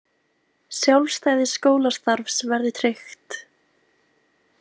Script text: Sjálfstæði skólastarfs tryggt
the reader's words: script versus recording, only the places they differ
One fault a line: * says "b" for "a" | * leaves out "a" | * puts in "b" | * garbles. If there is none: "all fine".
* puts in "verði"